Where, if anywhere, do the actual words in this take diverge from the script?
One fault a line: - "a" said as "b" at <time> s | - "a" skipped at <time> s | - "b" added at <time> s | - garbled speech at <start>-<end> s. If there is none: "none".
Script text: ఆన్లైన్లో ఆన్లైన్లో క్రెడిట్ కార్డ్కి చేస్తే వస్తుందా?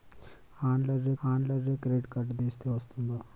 none